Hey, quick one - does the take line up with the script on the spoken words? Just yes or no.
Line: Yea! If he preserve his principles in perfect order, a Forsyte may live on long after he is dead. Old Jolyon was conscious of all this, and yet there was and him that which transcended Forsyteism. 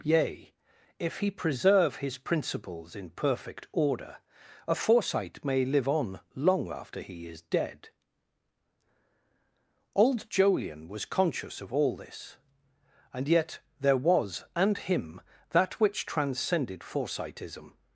yes